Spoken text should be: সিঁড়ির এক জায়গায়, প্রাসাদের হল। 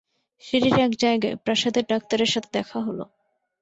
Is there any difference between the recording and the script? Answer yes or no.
yes